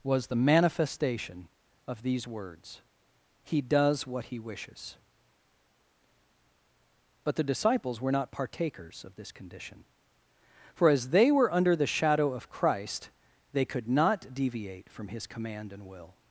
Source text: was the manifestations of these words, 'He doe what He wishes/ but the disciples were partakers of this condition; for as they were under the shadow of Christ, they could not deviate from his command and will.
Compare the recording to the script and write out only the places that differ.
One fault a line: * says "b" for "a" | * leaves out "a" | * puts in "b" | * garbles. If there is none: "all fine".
* says "manifestation" for "manifestations"
* says "does" for "doe"
* puts in "not"